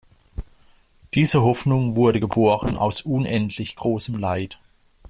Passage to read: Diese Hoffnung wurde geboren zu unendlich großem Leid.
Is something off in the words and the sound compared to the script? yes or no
yes